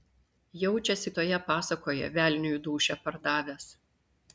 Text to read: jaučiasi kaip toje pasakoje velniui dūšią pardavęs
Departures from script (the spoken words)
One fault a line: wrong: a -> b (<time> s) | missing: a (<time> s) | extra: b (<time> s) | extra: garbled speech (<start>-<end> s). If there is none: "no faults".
missing: kaip (1.1 s)